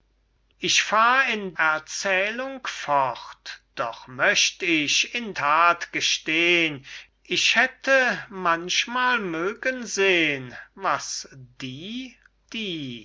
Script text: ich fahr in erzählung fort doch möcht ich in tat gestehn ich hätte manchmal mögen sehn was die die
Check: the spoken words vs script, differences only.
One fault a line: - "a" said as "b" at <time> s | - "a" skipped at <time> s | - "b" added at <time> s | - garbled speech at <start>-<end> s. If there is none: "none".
none